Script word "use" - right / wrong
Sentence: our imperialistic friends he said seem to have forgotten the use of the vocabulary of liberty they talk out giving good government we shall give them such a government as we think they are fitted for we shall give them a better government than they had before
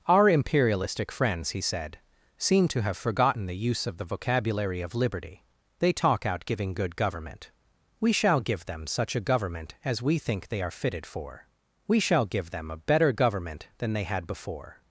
right